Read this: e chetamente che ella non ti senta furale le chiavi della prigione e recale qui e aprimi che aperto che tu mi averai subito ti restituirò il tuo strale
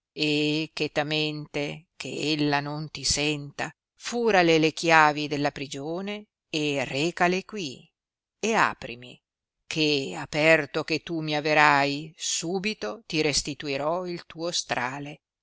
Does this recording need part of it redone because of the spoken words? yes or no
no